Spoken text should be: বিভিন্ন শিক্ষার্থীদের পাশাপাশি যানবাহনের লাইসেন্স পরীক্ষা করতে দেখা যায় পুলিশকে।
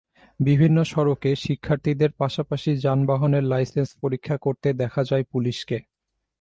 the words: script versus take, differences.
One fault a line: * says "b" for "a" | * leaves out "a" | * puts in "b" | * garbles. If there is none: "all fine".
* puts in "সড়কে"